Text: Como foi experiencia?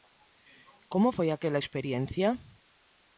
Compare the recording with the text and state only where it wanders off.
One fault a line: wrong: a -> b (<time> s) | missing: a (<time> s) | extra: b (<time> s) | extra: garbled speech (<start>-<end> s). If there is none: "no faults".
extra: aquela (1.3 s)